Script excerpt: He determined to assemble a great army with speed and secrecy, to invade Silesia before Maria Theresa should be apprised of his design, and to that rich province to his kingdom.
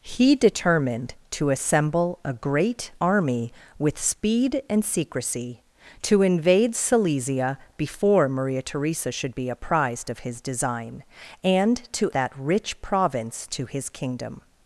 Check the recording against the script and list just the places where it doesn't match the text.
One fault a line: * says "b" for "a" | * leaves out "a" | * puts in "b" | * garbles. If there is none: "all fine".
all fine